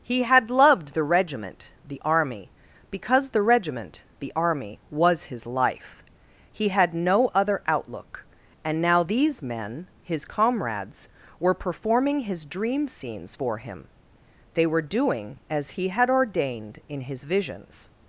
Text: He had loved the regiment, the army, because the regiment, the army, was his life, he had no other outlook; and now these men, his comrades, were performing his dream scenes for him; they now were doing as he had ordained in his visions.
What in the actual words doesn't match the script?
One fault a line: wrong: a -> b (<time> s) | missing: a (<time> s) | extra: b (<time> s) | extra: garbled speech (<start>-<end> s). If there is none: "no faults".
missing: now (14.7 s)